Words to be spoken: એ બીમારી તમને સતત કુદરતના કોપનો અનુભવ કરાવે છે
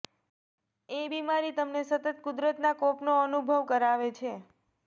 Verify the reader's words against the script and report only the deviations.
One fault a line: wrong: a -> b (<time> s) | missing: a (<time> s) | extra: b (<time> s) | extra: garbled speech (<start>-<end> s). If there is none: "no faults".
no faults